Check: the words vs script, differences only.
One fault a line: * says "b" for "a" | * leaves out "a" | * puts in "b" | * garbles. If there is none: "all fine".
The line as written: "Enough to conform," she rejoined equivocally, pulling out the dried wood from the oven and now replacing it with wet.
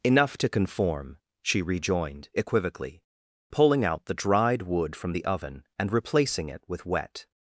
* leaves out "now"